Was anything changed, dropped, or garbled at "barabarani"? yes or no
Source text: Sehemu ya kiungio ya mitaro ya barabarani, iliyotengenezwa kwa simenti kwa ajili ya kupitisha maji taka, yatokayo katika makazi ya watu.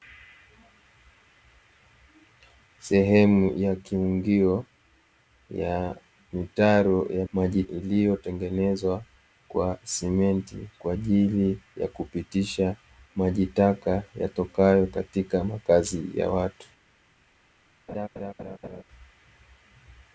yes